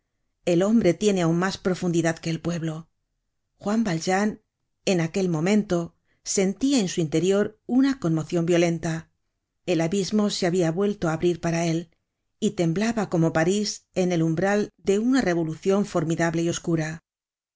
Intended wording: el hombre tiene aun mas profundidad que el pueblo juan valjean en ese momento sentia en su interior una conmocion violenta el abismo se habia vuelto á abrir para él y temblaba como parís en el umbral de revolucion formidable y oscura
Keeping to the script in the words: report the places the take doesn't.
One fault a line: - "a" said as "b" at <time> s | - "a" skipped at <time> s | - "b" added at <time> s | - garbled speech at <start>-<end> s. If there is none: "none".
- "ese" said as "aquel" at 5.0 s
- "una" added at 15.0 s